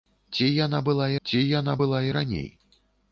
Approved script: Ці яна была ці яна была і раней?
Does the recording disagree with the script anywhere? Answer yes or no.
no